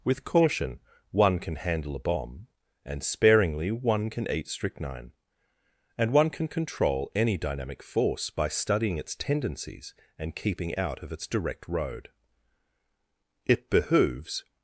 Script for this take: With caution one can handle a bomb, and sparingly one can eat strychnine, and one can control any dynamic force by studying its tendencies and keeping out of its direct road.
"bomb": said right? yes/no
yes